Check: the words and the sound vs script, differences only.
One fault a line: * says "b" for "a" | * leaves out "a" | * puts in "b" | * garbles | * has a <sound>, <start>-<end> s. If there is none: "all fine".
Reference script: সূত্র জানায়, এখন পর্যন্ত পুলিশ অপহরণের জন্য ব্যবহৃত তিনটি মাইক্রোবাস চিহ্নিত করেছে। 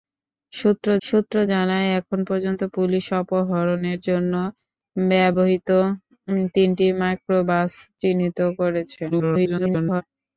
* puts in "সূত্র"
* garbles